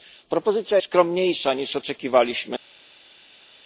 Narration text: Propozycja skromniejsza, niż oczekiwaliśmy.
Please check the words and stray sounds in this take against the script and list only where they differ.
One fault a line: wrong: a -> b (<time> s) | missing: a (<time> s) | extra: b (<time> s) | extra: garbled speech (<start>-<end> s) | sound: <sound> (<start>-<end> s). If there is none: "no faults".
no faults